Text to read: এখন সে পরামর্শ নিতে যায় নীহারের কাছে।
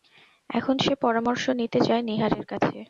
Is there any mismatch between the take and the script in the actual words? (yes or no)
no